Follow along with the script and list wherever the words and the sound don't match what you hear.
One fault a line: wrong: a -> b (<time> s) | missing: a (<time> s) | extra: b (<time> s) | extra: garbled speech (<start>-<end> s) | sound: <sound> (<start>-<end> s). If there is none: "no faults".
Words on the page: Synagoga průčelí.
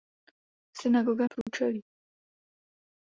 sound: dropout (1.4-1.5 s)